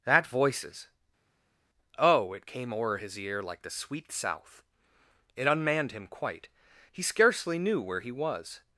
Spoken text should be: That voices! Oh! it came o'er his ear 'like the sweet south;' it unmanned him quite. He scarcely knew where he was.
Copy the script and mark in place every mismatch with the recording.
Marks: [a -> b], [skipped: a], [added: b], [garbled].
That voices! Oh! it came o'er his ear 'like the sweet south;' it unmanned him quite. He scarcely knew where he was.